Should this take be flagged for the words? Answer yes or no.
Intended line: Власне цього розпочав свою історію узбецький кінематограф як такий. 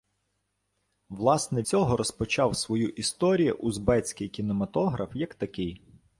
no